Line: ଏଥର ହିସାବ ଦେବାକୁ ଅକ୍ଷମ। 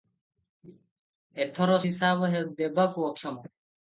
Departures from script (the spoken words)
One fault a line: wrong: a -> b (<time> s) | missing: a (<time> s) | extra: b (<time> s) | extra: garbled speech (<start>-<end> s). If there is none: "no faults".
no faults